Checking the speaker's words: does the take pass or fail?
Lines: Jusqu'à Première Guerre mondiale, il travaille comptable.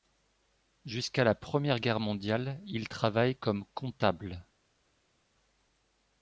fail